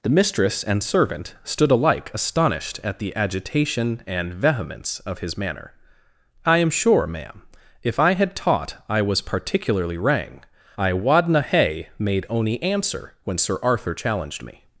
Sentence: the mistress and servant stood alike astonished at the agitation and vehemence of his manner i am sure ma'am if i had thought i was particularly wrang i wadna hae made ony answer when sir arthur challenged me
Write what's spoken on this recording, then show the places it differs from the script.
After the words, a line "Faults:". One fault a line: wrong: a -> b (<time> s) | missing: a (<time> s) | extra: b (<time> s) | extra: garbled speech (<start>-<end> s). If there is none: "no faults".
the mistress and servant stood alike astonished at the agitation and vehemence of his manner i am sure ma'am if i had taught i was particularly wrang i wadna hae made ony answer when sir arthur challenged me
Faults:
wrong: thought -> taught (8.3 s)